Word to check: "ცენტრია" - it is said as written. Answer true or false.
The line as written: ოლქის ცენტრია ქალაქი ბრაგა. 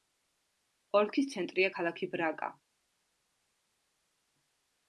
true